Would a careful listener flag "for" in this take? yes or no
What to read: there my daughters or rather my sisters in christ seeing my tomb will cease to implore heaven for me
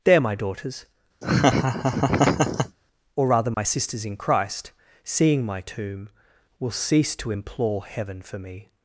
no